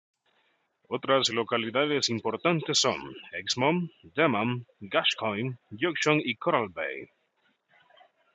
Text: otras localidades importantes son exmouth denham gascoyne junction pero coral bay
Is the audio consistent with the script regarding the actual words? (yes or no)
no